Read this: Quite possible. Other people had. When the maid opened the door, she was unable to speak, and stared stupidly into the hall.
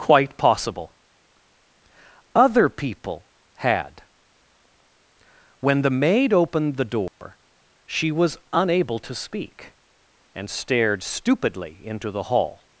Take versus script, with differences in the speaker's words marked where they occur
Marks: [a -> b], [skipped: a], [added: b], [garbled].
Quite possible. Other people had. When the maid opened the door, she was unable to speak, and stared stupidly into the hall.